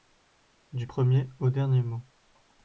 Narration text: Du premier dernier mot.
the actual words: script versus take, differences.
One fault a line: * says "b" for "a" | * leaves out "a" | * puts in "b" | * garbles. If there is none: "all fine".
* puts in "au"